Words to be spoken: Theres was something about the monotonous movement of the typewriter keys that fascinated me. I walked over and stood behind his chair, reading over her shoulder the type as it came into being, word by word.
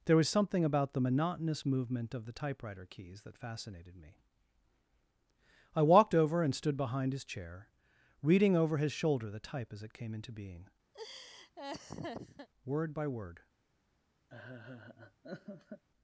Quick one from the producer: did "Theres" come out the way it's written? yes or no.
no